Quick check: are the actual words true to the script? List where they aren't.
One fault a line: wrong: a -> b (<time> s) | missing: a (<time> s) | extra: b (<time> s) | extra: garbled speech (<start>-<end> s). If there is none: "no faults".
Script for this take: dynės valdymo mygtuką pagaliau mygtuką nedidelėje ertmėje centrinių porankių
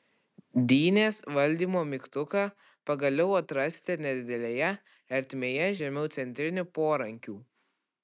wrong: mygtuką -> atrasite (3.4 s)
extra: žemiau (5.8 s)